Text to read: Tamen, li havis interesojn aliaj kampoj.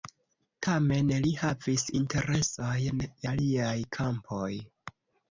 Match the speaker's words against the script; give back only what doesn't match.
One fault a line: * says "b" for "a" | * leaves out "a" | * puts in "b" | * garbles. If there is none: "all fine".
all fine